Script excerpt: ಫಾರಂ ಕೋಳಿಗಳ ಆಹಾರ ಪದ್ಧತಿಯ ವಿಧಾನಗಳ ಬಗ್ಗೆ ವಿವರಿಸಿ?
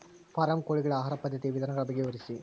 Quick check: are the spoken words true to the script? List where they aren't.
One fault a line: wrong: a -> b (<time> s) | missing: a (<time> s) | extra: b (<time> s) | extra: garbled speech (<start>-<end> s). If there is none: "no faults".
no faults